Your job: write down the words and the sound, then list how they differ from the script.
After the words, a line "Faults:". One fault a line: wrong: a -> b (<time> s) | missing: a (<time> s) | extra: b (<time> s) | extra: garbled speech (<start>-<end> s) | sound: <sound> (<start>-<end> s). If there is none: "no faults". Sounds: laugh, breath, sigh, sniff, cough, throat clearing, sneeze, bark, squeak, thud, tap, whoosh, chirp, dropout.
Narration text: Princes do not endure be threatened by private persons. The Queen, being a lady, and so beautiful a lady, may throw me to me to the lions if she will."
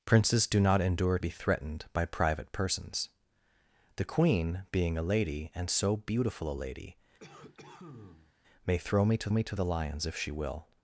Princes do not endure be threatened by private persons. The Queen, being a lady, and so beautiful a lady, may throw me to me to the lions if she will."
Faults:
sound: cough (7.2-8.4 s)